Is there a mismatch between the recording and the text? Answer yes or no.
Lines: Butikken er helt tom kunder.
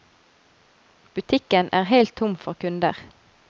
yes